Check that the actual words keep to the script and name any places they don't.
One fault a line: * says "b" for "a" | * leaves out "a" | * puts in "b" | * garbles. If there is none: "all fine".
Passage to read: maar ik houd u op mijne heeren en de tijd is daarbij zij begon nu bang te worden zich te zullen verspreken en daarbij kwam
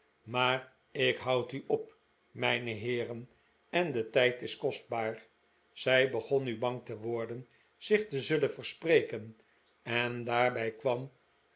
* says "kostbaar" for "daarbij"